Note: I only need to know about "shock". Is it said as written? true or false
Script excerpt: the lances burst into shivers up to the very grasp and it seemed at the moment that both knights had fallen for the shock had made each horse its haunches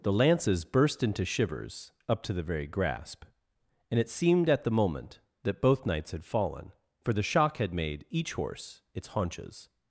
true